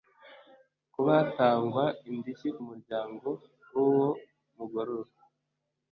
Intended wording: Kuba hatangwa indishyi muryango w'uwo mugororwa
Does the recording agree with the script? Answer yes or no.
yes